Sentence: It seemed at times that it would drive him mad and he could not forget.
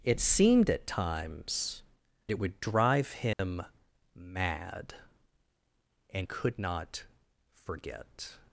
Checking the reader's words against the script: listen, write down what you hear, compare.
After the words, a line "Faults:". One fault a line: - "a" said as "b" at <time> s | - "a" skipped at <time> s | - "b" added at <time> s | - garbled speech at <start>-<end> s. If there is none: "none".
It seemed at times it would drive him mad and could not forget.
Faults:
- "that" skipped at 1.8 s
- "he" skipped at 6.3 s